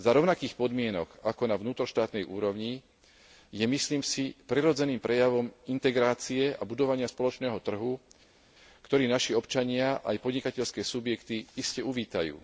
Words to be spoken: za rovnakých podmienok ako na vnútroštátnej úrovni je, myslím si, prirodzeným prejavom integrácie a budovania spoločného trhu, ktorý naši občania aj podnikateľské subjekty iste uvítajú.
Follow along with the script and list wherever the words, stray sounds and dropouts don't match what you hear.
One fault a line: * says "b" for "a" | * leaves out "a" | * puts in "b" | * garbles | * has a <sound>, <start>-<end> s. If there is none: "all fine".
all fine